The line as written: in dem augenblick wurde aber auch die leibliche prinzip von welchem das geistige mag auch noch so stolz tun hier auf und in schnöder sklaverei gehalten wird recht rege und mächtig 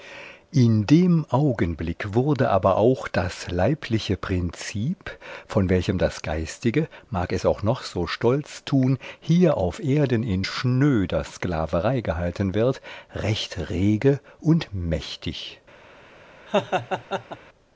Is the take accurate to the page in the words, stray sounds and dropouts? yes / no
no